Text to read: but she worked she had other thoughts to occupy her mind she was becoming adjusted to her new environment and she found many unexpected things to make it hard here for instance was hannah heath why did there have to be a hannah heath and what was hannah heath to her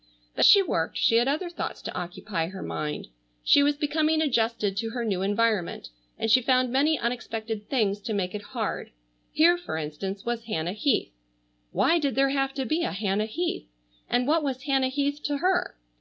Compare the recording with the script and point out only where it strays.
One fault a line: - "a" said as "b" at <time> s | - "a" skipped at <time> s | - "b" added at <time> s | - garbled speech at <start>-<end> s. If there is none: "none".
none